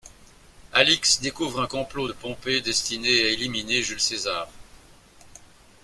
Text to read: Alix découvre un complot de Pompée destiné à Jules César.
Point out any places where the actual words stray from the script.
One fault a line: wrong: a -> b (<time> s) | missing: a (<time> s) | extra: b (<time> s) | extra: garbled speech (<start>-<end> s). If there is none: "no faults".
extra: éliminer (3.3 s)